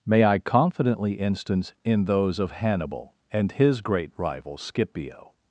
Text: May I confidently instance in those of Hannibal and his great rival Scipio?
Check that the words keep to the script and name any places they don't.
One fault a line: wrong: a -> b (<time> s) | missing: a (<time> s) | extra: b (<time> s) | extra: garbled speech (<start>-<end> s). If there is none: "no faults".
no faults